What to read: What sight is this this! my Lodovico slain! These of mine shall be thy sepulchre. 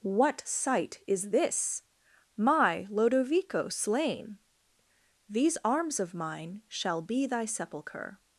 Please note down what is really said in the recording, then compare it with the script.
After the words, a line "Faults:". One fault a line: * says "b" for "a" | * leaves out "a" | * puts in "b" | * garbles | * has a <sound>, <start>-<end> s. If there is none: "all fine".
What sight is this! my Lodovico slain! These arms of mine shall be thy sepulchre.
Faults:
* leaves out "this"
* puts in "arms"